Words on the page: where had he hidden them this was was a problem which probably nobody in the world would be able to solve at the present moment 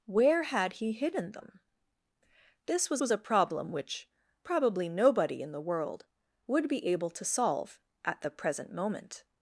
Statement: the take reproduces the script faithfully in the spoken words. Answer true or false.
true